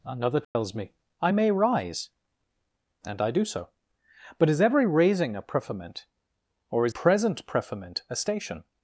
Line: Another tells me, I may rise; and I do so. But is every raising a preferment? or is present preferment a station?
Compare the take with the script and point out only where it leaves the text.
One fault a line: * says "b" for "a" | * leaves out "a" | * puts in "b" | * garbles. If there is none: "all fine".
all fine